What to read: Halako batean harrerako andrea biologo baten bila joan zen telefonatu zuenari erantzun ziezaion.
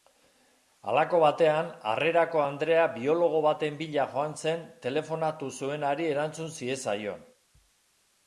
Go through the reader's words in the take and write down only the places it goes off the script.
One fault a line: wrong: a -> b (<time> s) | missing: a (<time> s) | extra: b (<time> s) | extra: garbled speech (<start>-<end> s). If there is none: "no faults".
no faults